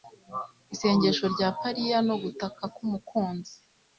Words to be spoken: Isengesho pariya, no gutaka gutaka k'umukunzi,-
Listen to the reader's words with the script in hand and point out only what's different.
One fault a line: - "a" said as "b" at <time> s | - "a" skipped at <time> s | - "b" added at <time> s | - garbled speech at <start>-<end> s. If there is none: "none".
- "rya" added at 1.3 s
- "gutaka" skipped at 2.6 s